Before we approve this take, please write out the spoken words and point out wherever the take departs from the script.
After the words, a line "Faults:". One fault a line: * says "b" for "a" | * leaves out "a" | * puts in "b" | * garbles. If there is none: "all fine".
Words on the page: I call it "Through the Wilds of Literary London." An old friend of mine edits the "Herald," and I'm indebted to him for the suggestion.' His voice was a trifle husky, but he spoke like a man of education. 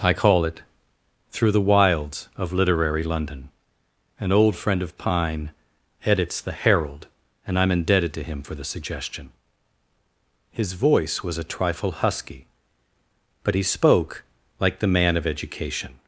I call it "Through the Wilds of Literary London." An old friend of pine edits the "Herald," and I'm indebted to him for the suggestion.' His voice was a trifle husky, but he spoke like the man of education.
Faults:
* says "pine" for "mine"
* says "the" for "a"